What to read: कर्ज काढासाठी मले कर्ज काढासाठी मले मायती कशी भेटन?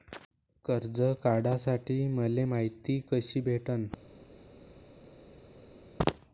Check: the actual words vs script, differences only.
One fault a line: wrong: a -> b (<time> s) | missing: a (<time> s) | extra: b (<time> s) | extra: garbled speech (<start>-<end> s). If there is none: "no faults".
missing: कर्ज काढासाठी मले (2.5 s)